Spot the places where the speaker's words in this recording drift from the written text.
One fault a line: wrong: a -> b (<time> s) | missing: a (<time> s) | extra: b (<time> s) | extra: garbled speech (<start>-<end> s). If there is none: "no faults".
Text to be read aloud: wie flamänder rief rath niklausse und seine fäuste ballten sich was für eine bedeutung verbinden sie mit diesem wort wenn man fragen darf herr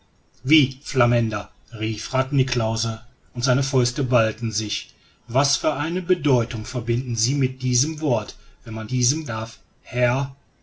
wrong: fragen -> diesem (8.9 s)